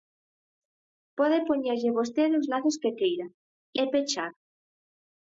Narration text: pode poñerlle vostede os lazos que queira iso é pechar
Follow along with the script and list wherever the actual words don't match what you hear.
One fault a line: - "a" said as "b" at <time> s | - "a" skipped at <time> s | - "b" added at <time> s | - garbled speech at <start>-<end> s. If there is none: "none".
- "iso" skipped at 3.3 s